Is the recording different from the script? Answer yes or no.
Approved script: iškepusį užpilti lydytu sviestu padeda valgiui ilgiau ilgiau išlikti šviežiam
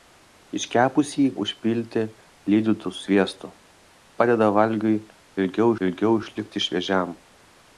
no